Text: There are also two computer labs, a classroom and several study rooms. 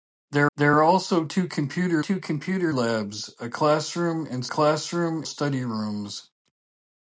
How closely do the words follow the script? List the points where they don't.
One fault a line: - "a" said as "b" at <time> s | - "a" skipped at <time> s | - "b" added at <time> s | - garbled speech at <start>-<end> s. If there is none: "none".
- "there" added at 0.6 s
- "two computer" added at 2.0 s
- "several" said as "classroom" at 4.5 s